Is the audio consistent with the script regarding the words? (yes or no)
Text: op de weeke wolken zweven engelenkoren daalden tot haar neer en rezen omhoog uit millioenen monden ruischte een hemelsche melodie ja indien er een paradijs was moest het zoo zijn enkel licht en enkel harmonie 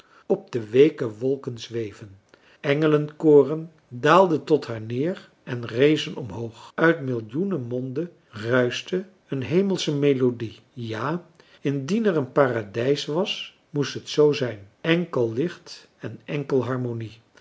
yes